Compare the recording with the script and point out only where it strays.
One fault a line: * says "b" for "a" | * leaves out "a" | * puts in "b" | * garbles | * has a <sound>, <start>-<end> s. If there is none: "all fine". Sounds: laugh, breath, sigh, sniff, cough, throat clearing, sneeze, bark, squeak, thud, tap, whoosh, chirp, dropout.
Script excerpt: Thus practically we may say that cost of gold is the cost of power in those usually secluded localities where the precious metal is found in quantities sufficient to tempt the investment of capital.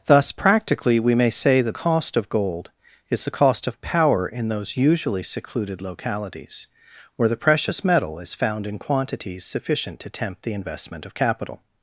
all fine